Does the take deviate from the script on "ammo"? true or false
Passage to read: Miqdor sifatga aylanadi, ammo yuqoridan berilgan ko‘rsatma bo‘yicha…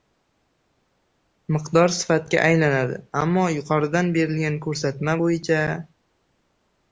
false